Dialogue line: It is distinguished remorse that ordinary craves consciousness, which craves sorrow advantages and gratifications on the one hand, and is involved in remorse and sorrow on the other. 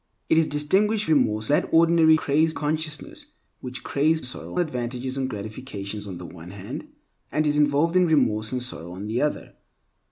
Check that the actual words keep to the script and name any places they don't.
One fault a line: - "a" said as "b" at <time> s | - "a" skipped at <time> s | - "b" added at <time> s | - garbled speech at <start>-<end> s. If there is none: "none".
none